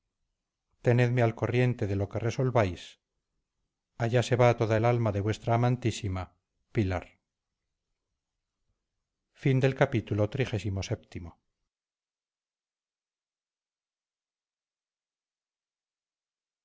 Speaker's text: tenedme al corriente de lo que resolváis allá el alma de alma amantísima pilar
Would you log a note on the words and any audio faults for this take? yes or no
yes